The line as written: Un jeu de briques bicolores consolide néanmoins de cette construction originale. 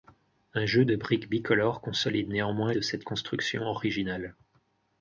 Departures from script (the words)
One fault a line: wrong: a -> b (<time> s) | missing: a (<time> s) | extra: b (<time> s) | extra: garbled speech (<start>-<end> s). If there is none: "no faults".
no faults